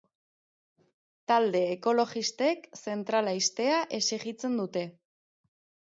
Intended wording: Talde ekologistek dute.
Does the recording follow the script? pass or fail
fail